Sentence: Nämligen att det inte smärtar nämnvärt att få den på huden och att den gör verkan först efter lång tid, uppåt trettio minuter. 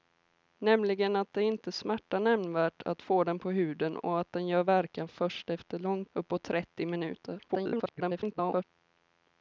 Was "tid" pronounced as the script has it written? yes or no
no